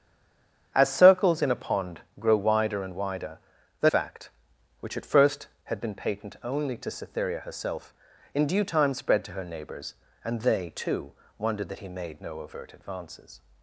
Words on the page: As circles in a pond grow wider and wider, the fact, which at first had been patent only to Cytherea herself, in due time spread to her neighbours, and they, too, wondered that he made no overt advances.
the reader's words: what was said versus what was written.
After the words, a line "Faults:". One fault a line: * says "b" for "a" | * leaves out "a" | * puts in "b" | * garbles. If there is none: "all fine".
As circles in a pond grow wider and wider, the fact, which at first had been patent only to Cytherea herself, in due time spread to her neighbours, and they, too, wondered that he made no overt advances.
Faults:
all fine